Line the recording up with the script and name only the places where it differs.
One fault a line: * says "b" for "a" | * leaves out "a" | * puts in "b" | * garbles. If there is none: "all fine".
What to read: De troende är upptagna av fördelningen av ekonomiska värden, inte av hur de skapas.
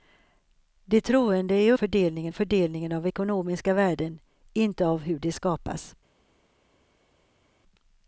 * says "fördelningen" for "upptagna"